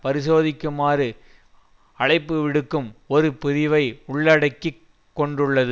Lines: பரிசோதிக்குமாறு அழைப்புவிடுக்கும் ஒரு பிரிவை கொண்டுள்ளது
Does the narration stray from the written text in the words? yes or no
yes